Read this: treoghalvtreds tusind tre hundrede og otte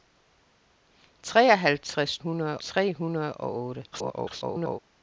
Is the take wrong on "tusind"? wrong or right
wrong